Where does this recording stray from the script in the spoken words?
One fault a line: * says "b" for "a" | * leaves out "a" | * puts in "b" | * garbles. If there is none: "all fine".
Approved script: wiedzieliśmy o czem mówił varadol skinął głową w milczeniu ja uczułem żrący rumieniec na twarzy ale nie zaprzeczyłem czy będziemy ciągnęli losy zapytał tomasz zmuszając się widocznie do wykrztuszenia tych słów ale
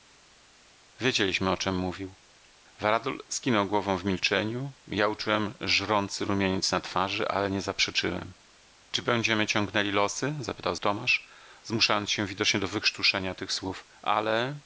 all fine